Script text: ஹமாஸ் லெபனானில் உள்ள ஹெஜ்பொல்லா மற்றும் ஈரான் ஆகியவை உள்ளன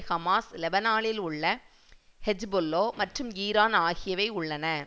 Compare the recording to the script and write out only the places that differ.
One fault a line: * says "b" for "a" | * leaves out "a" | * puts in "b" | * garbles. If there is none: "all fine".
all fine